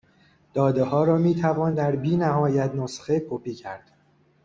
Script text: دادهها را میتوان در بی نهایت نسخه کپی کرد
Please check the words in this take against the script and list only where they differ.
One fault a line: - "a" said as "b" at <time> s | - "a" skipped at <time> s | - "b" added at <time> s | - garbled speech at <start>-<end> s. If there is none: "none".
none